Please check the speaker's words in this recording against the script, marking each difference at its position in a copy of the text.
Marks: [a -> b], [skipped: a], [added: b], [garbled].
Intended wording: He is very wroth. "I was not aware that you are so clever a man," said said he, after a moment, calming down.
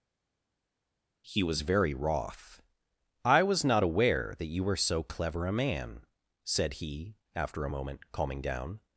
He [is -> was] very wroth. "I was not aware that you [are -> were] so clever a man," said [skipped: said] he, after a moment, calming down.